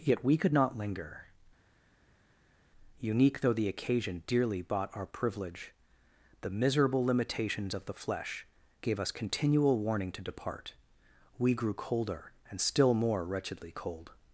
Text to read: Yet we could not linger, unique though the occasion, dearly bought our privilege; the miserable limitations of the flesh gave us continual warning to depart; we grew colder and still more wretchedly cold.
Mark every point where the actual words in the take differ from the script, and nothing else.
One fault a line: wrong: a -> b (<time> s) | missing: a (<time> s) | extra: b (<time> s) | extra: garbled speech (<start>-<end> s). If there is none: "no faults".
no faults